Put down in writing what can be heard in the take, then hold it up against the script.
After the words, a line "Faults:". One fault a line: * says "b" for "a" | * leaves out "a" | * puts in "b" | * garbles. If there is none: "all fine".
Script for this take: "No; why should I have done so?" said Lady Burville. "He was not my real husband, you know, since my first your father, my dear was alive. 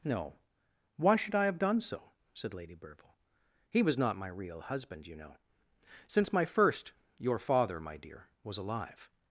"No; why should I have done so?" said Lady Burville. "He was not my real husband, you know, since my first your father, my dear was alive.
Faults:
all fine